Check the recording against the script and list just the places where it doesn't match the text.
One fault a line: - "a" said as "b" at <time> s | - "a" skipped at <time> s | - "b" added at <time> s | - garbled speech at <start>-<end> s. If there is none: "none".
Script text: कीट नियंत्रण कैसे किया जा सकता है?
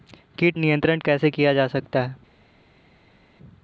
none